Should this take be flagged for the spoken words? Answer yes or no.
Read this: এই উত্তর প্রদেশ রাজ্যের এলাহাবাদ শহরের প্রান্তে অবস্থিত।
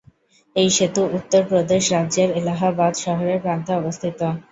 yes